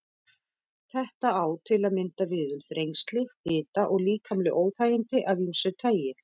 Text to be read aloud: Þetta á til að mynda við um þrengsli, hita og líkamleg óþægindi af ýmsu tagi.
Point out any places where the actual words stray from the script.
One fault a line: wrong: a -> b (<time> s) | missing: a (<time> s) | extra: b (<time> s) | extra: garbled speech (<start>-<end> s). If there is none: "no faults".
no faults